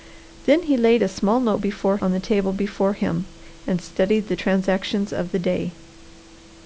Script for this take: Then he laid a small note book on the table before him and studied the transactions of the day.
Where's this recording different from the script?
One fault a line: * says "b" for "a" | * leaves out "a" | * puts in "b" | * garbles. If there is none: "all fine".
* says "before" for "book"